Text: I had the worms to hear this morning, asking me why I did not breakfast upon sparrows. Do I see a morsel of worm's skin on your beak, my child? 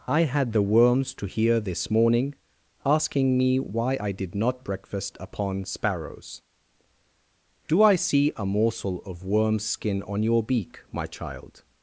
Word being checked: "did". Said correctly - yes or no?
yes